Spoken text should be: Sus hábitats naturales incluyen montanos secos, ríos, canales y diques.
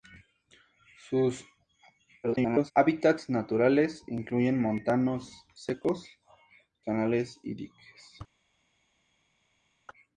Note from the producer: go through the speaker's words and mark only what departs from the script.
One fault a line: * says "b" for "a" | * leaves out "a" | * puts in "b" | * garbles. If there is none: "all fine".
* garbles
* leaves out "ríos"